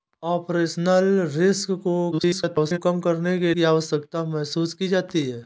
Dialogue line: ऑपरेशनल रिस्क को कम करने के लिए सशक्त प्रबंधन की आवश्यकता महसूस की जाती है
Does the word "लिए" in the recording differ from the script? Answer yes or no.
yes